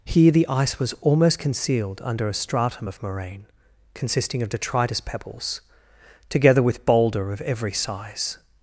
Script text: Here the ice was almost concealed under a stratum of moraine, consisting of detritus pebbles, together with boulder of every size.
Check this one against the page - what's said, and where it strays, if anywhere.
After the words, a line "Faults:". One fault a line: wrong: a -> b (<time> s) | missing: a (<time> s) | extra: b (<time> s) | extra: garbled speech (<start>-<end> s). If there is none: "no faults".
Here the ice was almost concealed under a stratum of moraine, consisting of detritus pebbles, together with boulder of every size.
Faults:
no faults